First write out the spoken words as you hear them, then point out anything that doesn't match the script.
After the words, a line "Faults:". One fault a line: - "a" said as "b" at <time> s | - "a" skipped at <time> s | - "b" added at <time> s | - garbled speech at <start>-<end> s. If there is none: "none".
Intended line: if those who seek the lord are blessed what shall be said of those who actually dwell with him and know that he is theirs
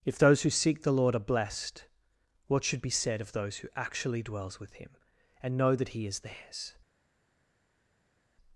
if those who seek the lord are blessed what should be said of those who actually dwells with him and know that he is theirs
Faults:
- "shall" said as "should" at 2.6 s
- "dwell" said as "dwells" at 4.2 s